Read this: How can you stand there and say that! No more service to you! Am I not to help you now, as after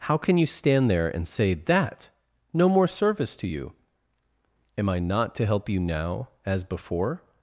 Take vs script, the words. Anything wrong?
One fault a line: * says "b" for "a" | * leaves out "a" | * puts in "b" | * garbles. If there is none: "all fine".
* says "before" for "after"